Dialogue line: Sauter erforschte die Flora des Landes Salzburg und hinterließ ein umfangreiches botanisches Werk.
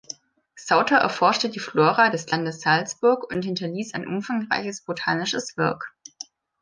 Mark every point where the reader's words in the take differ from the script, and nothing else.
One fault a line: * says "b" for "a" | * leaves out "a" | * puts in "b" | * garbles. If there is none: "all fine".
all fine